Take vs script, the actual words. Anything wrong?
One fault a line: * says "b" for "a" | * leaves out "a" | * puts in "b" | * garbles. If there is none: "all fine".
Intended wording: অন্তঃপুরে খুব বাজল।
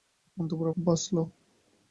all fine